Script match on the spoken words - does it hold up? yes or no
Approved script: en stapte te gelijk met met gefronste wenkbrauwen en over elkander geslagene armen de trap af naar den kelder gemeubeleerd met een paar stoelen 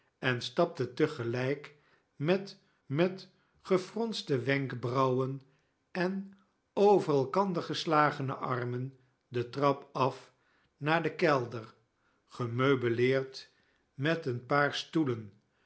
yes